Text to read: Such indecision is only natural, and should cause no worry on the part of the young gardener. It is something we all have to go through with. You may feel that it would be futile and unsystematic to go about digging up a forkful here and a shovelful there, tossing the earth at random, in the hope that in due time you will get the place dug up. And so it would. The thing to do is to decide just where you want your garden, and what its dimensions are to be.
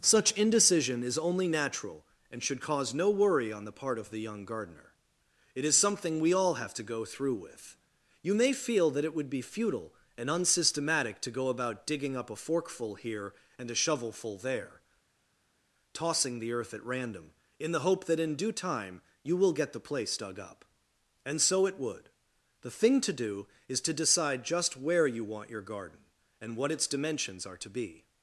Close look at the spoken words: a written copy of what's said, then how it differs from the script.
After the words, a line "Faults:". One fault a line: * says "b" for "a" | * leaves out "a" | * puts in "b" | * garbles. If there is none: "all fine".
Such indecision is only natural, and should cause no worry on the part of the young gardener. It is something we all have to go through with. You may feel that it would be futile and unsystematic to go about digging up a forkful here and a shovelful there, tossing the earth at random, in the hope that in due time you will get the place dug up. And so it would. The thing to do is to decide just where you want your garden, and what its dimensions are to be.
Faults:
all fine